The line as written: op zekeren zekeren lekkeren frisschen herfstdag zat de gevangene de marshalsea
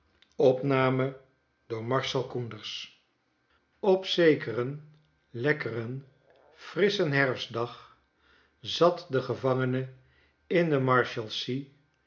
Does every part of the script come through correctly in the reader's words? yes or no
no